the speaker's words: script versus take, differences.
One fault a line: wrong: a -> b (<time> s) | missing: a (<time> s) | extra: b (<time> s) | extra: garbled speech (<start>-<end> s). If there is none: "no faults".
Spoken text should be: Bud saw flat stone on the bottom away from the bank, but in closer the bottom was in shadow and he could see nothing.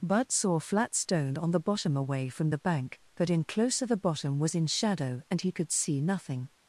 no faults